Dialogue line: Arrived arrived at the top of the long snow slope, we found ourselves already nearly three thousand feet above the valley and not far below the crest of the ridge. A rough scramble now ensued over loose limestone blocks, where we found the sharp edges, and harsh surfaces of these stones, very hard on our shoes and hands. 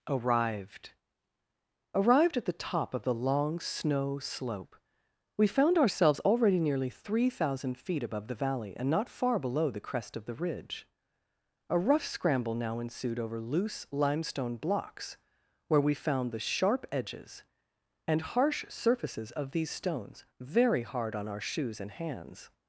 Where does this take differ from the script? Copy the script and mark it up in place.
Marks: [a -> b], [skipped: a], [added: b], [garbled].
Arrived arrived at the top of the long snow slope, we found ourselves already nearly three thousand feet above the valley and not far below the crest of the ridge. A rough scramble now ensued over loose limestone blocks, where we found the sharp edges, and harsh surfaces of these stones, very hard on our shoes and hands.